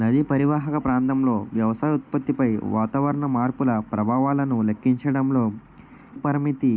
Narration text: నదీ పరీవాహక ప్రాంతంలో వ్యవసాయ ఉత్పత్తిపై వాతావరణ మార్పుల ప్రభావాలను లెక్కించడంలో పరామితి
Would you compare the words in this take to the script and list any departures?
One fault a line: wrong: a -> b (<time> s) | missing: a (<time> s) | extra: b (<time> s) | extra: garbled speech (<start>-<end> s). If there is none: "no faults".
no faults